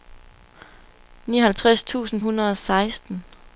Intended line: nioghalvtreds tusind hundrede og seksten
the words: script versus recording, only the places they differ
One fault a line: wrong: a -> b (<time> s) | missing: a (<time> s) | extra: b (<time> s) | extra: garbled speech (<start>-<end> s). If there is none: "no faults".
no faults